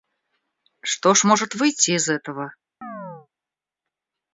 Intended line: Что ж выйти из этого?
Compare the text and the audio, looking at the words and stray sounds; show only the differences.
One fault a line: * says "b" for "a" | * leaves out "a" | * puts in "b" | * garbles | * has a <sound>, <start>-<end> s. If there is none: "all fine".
* puts in "может"
* has a chirp, 2.8-3.3 s